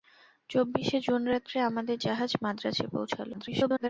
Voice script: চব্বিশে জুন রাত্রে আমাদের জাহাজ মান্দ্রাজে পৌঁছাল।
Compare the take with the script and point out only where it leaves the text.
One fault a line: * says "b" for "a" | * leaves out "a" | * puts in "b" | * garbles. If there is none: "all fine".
* garbles